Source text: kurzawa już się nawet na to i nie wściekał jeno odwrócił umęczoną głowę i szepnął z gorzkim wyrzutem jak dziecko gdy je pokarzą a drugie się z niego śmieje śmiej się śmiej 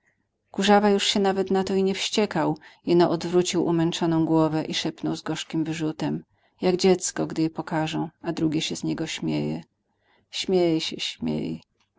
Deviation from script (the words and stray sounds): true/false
false